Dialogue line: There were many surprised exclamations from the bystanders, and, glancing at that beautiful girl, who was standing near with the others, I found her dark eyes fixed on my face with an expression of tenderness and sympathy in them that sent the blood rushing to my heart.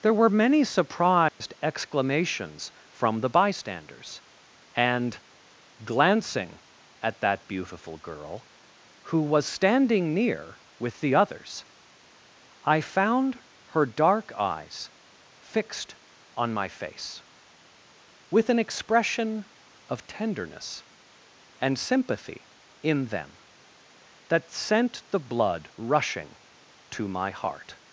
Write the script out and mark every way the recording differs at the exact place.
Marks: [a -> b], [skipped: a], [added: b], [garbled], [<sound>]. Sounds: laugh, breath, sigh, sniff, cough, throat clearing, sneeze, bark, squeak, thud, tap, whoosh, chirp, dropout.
There were many surprised [dropout] exclamations from the bystanders, and, glancing at that beautiful girl, who was standing near with the others, I found her dark eyes fixed on my face with an expression of tenderness and sympathy in them that sent the blood rushing to my heart.